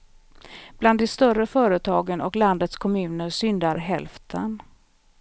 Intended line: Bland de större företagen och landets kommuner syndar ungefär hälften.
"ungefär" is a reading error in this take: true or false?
true